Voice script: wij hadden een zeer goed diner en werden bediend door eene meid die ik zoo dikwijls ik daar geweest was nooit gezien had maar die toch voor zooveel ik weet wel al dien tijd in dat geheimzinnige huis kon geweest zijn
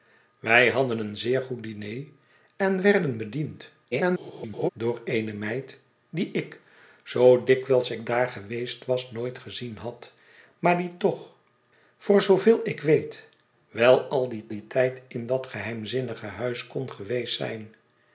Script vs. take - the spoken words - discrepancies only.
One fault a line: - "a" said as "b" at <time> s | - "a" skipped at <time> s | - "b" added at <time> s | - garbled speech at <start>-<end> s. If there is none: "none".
- garbled speech at 3.9-4.7 s
- "dien" added at 14.5 s